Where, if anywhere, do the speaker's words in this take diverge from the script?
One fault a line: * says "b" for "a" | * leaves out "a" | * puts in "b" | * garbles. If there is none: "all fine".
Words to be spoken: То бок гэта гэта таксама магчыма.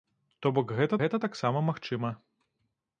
all fine